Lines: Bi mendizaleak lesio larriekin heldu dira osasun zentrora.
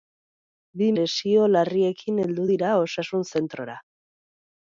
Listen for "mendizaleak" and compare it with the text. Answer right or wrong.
wrong